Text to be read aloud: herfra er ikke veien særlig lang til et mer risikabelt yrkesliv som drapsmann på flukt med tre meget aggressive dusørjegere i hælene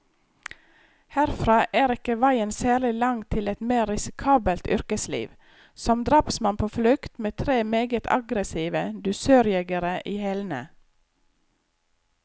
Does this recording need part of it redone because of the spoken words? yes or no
no